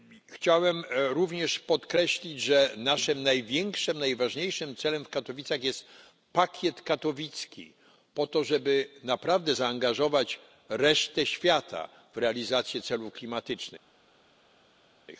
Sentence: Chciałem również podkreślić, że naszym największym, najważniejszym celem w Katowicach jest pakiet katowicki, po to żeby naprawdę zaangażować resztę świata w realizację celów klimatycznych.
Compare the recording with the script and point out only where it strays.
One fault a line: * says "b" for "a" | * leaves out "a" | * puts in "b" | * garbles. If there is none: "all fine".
all fine